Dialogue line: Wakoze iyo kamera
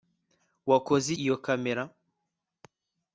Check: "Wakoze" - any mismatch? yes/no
no